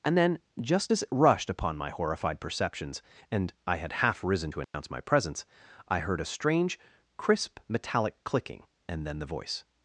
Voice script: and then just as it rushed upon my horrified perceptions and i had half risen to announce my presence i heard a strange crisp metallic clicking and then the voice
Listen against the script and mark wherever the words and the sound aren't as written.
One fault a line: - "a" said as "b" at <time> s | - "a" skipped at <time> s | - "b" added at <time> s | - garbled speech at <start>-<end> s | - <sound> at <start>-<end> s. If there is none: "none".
- dropout at 4.6-4.7 s